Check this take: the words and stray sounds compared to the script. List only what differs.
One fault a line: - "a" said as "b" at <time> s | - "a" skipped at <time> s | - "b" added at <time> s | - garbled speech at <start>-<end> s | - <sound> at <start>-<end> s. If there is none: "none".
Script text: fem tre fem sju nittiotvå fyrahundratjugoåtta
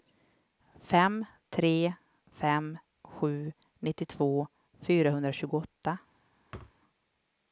- thud at 6.5-6.8 s